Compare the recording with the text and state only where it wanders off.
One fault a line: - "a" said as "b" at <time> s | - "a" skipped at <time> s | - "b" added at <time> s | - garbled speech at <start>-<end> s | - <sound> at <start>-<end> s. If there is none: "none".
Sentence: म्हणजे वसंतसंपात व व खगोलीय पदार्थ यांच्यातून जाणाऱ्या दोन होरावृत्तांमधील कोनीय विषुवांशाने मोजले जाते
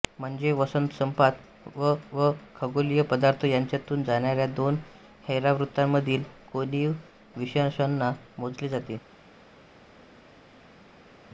none